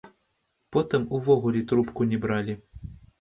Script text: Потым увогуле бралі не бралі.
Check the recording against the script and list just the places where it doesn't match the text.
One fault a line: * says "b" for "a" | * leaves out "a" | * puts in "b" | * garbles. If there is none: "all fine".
* says "трубку" for "бралі"